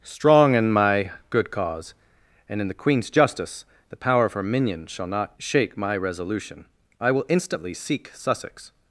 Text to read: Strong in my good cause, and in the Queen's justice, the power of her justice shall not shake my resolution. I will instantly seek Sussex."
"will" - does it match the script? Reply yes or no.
yes